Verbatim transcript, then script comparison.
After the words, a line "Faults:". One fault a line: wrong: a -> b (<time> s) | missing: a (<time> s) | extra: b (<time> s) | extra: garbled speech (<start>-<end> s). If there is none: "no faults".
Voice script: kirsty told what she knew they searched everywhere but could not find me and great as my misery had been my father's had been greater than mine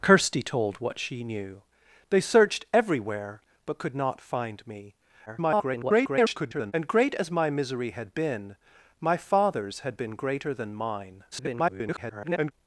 kirsty told what she knew they searched everywhere but could not find me [garbled] and great as my misery had been my father's had been greater than mine [garbled]
Faults:
extra: garbled speech (5.3-6.7 s)
extra: garbled speech (11.3-12.5 s)